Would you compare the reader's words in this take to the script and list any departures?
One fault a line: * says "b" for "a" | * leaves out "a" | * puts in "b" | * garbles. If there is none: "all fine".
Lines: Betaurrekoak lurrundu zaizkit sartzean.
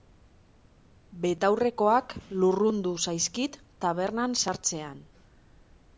* puts in "tabernan"